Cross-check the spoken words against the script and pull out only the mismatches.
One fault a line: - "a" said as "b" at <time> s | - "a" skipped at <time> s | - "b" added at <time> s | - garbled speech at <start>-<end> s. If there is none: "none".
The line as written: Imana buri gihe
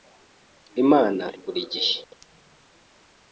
none